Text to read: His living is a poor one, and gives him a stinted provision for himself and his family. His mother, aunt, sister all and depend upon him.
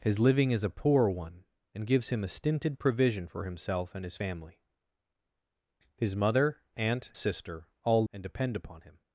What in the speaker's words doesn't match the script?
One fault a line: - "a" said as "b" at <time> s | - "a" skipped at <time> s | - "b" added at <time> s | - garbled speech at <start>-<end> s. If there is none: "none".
none